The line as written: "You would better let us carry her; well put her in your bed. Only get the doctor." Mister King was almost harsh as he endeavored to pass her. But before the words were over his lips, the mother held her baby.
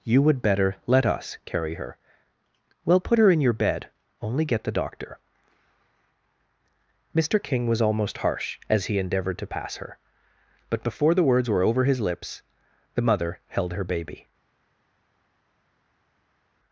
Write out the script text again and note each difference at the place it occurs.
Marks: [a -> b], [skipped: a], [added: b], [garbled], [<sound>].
"You would better let us carry her; well put her in your bed. Only get the doctor." Mister King was almost harsh as he endeavored to pass her. But before the words were over his lips, the mother held her baby.